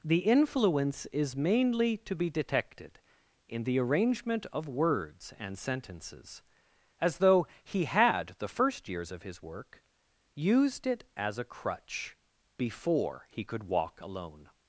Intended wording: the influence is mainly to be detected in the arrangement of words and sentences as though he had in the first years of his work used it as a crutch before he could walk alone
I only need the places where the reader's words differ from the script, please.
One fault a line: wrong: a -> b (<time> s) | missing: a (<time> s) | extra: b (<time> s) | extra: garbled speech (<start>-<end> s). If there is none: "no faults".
missing: in (8.4 s)